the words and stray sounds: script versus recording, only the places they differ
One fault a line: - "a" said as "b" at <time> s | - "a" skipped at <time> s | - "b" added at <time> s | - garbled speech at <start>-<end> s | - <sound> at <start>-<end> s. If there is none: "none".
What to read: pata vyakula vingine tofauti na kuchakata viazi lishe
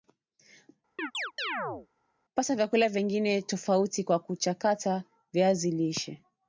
- chirp at 1.0-1.9 s
- "na" said as "kwa" at 4.0 s